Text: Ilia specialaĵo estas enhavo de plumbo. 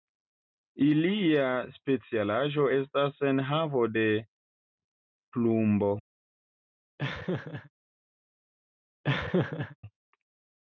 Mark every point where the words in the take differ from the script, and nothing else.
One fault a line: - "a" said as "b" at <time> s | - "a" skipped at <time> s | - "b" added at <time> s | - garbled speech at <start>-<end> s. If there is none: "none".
none